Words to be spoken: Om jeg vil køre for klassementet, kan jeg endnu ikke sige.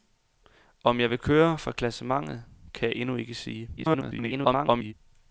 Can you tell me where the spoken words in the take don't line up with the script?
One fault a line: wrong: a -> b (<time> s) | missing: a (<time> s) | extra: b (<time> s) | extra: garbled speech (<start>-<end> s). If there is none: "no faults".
extra: garbled speech (3.8-4.9 s)